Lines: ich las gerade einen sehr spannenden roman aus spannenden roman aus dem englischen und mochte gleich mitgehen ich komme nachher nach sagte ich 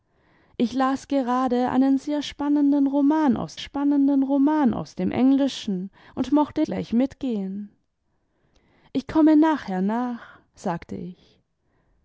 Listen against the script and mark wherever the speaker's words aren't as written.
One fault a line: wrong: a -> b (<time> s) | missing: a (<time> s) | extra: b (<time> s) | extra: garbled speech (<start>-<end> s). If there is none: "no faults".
no faults